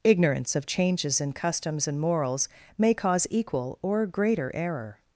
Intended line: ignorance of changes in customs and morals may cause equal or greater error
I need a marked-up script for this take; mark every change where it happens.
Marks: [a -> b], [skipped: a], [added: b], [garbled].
ignorance of changes in customs and morals may cause equal or greater error